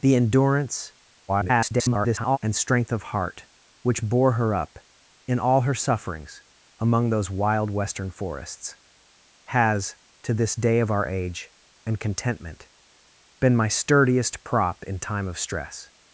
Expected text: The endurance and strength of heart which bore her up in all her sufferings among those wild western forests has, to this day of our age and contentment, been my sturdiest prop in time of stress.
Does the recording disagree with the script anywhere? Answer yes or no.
yes